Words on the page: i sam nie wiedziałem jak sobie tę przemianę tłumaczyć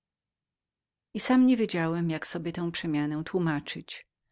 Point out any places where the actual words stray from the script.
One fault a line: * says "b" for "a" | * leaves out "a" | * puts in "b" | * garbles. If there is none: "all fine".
all fine